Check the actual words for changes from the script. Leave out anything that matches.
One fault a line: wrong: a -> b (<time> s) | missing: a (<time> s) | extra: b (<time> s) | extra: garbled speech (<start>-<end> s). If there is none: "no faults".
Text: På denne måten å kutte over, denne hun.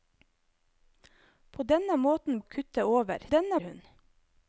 no faults